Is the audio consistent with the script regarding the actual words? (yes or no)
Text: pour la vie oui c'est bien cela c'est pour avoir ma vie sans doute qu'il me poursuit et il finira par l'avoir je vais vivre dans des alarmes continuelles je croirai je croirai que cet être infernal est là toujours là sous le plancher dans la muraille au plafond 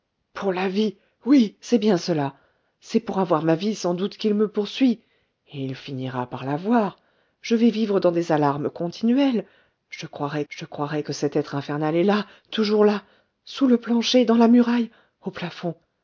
yes